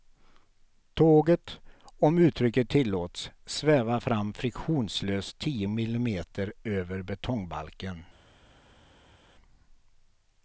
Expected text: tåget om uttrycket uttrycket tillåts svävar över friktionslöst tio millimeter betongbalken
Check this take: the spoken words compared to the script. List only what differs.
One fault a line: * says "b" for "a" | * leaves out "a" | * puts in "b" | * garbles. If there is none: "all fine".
* leaves out "uttrycket"
* says "fram" for "över"
* puts in "över"